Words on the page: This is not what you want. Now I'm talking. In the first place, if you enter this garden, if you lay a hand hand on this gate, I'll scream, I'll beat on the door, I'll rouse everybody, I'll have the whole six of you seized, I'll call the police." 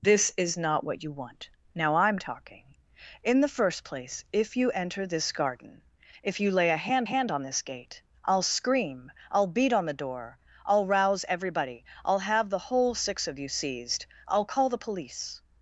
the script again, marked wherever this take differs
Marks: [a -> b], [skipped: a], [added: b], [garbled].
This is not what you want. Now I'm talking. In the first place, if you enter this garden, if you lay a hand hand on this gate, I'll scream, I'll beat on the door, I'll rouse everybody, I'll have the whole six of you seized, I'll call the police."